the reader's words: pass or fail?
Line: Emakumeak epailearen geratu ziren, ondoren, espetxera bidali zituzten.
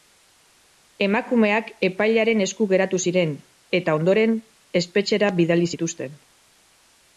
fail